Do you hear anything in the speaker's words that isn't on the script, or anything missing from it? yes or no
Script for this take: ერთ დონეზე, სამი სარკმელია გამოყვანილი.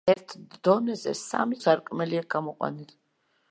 no